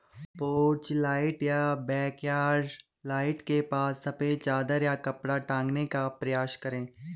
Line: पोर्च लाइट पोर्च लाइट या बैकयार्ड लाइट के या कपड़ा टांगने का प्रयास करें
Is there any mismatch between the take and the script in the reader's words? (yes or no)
yes